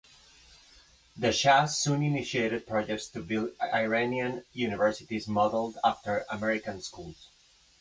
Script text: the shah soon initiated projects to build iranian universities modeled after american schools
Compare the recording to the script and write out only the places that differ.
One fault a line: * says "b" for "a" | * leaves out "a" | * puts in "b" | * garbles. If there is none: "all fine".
all fine